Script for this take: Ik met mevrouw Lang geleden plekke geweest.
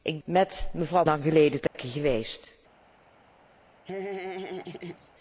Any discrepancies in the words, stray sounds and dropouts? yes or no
yes